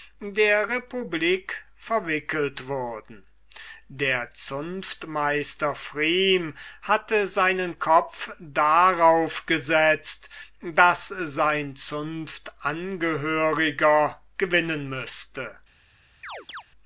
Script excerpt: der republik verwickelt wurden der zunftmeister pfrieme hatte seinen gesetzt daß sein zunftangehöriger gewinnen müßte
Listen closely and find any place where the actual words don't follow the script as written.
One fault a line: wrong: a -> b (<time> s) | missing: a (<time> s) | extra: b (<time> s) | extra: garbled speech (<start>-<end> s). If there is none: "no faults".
extra: kopf darauf (7.8 s)